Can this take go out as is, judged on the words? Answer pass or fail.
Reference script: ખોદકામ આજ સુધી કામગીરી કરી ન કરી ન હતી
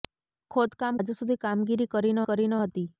pass